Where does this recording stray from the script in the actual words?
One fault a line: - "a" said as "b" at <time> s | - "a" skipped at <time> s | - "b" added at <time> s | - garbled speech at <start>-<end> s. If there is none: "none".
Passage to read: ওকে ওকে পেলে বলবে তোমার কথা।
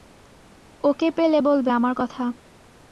- "ওকে" skipped at 1.1 s
- "তোমার" said as "আমার" at 1.7 s